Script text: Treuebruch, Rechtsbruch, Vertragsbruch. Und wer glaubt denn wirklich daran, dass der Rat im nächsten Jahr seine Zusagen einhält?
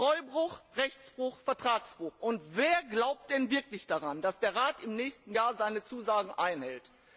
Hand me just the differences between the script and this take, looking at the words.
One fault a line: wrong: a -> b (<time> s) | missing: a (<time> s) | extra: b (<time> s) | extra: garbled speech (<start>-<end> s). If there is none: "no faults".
no faults